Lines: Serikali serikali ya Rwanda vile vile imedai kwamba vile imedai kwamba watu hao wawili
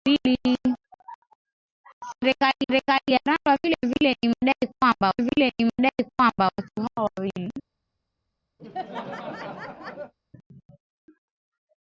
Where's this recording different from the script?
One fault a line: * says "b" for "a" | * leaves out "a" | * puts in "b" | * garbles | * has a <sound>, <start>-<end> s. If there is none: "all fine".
* has a laugh, 8.6-10.1 s